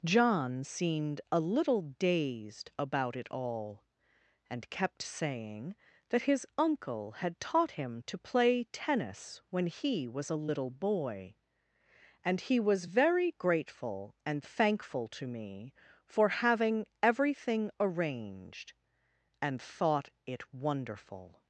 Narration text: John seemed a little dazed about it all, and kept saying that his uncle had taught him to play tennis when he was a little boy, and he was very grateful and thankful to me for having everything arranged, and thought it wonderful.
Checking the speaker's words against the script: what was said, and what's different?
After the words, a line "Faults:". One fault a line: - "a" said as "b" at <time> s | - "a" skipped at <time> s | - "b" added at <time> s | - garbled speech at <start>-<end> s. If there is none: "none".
John seemed a little dazed about it all, and kept saying that his uncle had taught him to play tennis when he was a little boy, and he was very grateful and thankful to me for having everything arranged, and thought it wonderful.
Faults:
none